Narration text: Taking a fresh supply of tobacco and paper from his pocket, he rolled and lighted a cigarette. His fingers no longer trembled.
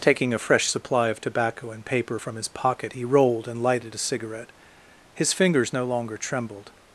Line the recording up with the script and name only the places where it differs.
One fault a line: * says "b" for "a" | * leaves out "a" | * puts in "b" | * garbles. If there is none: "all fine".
all fine